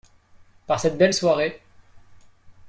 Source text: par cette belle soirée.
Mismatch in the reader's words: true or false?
false